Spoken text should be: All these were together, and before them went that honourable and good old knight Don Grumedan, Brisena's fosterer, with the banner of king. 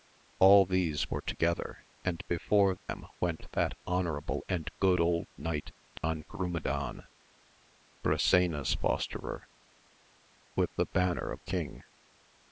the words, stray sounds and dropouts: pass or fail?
fail